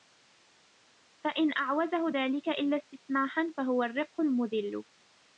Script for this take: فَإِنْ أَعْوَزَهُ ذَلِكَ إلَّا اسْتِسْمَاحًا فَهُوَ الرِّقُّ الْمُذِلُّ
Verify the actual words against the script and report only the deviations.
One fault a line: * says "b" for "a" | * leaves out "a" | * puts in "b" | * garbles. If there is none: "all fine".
all fine